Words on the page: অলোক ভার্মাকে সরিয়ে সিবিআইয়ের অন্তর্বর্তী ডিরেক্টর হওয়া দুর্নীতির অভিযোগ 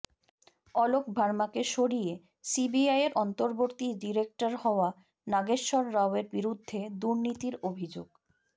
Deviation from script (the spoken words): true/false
true